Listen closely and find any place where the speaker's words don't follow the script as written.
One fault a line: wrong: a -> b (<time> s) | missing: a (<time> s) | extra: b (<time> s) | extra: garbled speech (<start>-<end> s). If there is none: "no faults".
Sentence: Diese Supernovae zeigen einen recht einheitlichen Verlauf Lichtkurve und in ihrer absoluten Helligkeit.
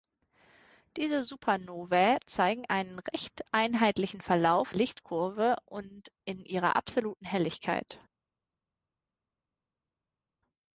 no faults